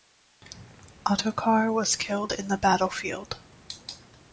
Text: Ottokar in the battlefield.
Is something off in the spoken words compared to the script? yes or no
yes